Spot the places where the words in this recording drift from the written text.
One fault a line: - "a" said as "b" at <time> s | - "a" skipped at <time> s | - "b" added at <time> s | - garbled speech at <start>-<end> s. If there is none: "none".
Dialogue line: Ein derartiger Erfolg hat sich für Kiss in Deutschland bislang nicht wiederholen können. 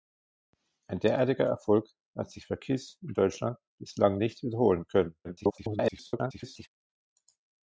- garbled speech at 5.2-6.7 s